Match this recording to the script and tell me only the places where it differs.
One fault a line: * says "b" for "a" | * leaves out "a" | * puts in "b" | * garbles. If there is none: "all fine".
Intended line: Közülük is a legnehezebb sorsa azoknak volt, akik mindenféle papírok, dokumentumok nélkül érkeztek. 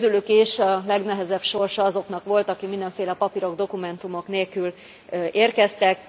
all fine